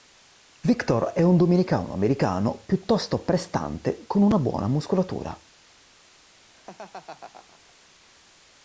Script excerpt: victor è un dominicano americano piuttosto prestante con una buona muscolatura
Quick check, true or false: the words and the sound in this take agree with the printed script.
false